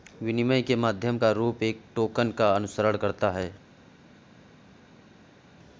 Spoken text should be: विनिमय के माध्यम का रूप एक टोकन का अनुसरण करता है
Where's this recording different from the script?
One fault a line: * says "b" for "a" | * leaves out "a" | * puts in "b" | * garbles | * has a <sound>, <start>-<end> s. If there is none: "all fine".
all fine